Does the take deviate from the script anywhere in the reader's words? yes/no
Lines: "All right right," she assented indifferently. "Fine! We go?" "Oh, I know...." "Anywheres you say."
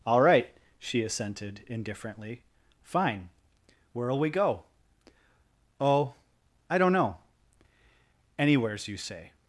yes